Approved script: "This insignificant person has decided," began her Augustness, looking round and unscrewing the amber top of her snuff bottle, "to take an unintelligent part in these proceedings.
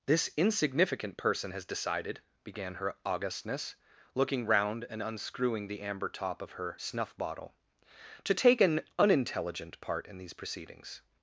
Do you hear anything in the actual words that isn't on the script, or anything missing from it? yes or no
no